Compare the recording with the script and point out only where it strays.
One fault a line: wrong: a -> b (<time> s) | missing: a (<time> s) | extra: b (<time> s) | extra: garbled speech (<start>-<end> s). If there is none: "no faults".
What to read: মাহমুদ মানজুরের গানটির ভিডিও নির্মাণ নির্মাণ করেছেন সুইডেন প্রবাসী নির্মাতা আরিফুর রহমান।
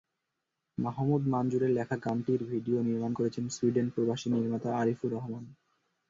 extra: লেখা (1.7 s)
missing: নির্মাণ (3.1 s)